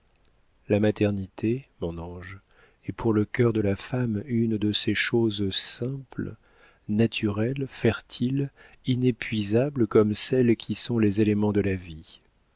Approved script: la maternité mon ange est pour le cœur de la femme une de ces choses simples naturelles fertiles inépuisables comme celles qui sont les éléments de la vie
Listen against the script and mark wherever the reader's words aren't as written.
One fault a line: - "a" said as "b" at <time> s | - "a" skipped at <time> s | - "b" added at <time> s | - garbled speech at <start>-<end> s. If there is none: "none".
none